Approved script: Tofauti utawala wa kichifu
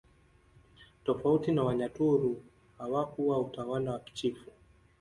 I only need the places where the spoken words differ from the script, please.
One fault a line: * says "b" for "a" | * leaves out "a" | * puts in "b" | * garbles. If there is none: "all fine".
* puts in "na Wanyaturu hawakuwa"